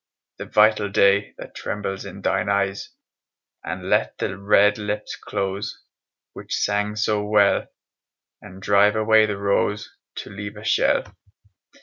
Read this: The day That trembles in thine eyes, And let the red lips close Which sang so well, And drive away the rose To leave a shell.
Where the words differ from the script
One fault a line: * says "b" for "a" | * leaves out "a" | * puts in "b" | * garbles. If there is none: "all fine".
* puts in "vital"